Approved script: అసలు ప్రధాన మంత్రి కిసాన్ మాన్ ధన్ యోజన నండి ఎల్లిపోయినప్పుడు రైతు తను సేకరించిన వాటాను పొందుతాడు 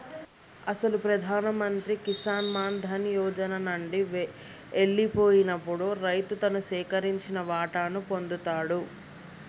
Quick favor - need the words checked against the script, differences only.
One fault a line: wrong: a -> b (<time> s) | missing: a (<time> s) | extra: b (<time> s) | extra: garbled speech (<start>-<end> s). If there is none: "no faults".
no faults